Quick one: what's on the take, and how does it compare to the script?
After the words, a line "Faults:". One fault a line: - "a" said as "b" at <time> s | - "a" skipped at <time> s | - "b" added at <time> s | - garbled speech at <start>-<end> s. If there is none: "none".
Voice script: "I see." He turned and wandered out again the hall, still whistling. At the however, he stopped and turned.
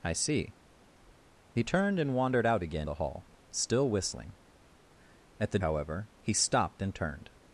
"I see." He turned and wandered out again the hall, still whistling. At the however, he stopped and turned.
Faults:
none